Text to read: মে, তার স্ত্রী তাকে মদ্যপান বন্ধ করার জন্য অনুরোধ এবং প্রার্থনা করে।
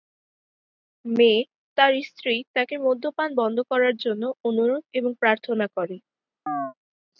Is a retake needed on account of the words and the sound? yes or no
yes